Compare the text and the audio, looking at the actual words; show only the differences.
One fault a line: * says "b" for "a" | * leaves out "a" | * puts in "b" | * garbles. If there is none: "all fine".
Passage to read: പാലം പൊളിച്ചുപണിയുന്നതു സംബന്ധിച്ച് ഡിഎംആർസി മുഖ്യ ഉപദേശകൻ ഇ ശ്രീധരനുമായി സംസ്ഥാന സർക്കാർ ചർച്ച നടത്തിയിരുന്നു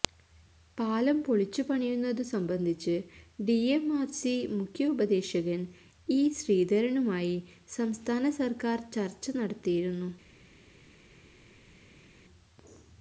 all fine